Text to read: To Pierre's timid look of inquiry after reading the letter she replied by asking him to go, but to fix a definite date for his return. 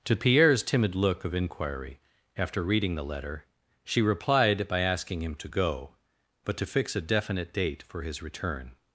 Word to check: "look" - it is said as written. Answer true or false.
true